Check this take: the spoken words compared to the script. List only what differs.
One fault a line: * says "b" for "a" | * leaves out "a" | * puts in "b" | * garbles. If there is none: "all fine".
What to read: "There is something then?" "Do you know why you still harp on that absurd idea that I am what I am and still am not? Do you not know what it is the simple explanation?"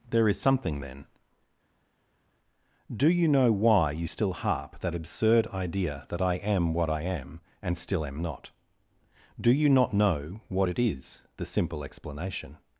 * leaves out "on"